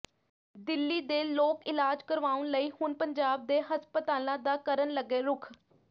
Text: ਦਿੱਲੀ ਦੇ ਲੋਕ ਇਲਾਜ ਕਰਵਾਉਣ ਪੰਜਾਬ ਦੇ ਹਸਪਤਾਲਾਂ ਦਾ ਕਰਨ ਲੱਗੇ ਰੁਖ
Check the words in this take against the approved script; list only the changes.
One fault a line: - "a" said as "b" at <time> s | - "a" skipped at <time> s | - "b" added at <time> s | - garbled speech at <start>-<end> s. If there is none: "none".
- "ਲਈ ਹੁਣ" added at 2.5 s